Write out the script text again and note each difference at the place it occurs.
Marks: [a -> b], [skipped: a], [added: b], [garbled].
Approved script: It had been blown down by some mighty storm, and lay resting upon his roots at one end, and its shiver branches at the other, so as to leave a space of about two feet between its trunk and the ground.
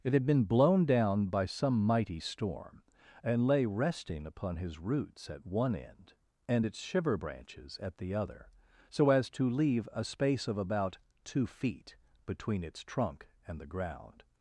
It had been blown down by some mighty storm, and lay resting upon his roots at one end, and its shiver branches at the other, so as to leave a space of about two feet between its trunk and the ground.